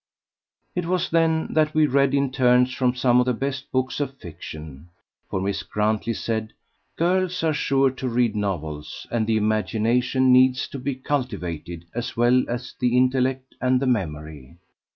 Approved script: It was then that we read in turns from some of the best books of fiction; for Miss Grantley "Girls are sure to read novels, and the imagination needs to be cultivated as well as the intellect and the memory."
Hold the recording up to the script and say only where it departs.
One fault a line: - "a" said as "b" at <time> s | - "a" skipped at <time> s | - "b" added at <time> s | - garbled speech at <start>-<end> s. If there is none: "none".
- "said" added at 6.1 s